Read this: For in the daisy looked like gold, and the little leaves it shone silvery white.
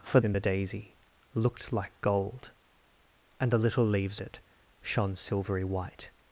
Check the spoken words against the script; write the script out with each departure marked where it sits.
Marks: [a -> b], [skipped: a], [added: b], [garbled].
For in the daisy looked like gold, and the little leaves it shone silvery white.